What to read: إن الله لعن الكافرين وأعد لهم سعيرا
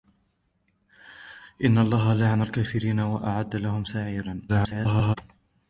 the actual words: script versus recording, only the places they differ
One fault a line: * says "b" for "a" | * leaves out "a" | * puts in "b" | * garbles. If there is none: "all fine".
* garbles